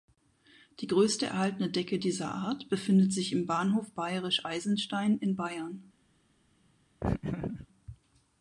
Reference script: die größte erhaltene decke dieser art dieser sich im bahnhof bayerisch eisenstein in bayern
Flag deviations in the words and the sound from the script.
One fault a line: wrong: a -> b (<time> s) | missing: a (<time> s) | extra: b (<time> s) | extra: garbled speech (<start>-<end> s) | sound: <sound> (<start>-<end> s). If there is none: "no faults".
wrong: dieser -> befindet (2.7 s)
sound: laugh (7.0-7.7 s)